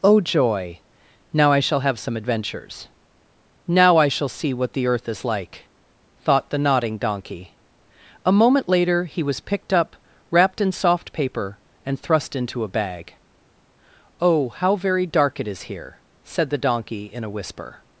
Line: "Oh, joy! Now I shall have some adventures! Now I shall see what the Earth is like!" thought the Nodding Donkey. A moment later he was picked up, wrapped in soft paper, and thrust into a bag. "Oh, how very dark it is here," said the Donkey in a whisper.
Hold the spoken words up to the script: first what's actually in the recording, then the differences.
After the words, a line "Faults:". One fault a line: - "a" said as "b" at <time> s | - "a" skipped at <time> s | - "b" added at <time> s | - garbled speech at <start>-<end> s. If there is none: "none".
"Oh, joy! Now I shall have some adventures! Now I shall see what the Earth is like!" thought the Nodding Donkey. A moment later he was picked up, wrapped in soft paper, and thrust into a bag. "Oh, how very dark it is here," said the Donkey in a whisper.
Faults:
none